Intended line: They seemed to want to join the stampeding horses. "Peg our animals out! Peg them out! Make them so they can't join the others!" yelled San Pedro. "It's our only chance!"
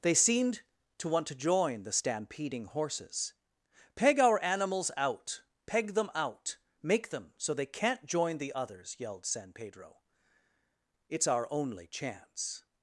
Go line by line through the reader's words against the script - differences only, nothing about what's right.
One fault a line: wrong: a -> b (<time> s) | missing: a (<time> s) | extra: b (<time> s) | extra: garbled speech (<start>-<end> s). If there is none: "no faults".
no faults